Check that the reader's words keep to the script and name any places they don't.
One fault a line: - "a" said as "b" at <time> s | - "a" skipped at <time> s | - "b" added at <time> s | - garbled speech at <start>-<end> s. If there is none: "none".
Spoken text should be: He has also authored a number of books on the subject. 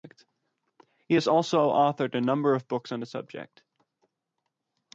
none